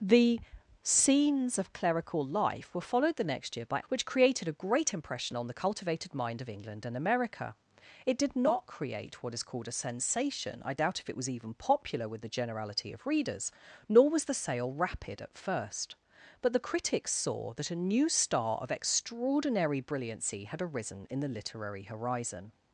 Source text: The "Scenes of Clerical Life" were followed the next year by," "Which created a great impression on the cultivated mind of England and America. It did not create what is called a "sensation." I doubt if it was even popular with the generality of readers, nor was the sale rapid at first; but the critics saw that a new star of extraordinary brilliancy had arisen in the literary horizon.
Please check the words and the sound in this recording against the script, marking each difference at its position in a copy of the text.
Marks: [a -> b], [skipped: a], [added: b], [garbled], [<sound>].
The "Scenes of Clerical Life" were followed the next year by," "Which created a great impression on the cultivated mind of England and America. It did not create what is called a "sensation." I doubt if it was even popular with the generality of readers, nor was the sale rapid at first; but the critics saw that a new star of extraordinary brilliancy had arisen in the literary horizon.